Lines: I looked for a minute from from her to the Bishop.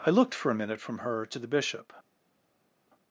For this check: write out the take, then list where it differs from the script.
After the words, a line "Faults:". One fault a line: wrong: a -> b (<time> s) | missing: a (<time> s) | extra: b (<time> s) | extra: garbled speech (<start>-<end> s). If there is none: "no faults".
I looked for a minute from her to the Bishop.
Faults:
missing: from (1.0 s)